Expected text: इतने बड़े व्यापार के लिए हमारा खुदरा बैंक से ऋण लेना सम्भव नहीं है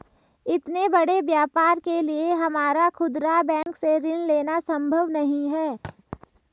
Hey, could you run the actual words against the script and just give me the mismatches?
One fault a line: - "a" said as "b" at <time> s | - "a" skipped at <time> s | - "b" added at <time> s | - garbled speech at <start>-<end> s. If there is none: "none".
none